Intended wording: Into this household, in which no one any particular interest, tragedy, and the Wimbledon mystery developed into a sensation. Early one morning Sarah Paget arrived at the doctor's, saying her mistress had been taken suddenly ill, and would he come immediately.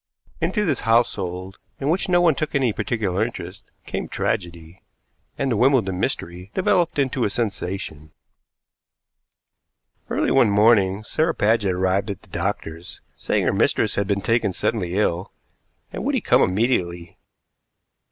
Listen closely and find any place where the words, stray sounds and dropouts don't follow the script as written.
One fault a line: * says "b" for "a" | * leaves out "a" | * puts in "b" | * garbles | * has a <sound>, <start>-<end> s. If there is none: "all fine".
* puts in "took"
* puts in "came"